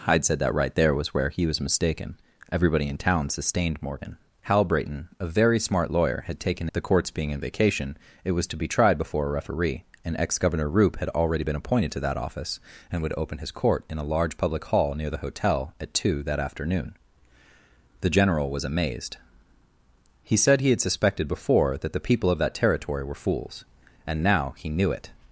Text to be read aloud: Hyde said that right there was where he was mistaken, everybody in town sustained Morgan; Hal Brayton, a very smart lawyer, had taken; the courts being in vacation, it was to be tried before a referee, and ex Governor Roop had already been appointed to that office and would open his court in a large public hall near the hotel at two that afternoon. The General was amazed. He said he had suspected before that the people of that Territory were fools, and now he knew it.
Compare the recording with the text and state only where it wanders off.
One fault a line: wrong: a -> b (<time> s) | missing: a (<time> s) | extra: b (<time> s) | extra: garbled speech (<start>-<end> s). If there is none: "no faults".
no faults